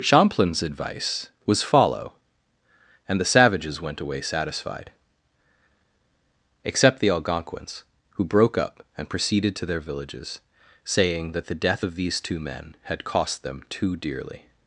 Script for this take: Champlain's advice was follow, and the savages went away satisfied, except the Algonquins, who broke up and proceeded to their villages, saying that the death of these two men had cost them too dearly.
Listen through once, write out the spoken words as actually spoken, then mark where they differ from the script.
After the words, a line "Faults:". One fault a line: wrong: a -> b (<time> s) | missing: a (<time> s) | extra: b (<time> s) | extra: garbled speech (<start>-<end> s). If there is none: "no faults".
Champlain's advice was follow, and the savages went away satisfied, except the Algonquins, who broke up and proceeded to their villages, saying that the death of these two men had cost them too dearly.
Faults:
no faults